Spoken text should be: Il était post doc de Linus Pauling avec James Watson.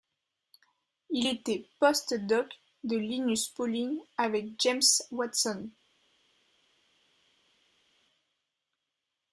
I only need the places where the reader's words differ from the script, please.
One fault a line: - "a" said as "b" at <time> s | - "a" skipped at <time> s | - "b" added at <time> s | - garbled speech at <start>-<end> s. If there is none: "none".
none